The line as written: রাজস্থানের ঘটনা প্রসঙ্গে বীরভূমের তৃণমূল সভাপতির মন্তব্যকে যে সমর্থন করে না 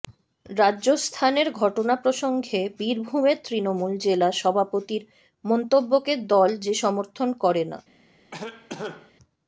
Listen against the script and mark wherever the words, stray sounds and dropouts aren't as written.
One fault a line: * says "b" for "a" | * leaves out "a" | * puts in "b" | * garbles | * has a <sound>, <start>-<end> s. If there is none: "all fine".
* puts in "জেলা"
* puts in "দল"
* has a cough, 8.3-9.1 s